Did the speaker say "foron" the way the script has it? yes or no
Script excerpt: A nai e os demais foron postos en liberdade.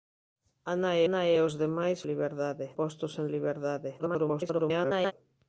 no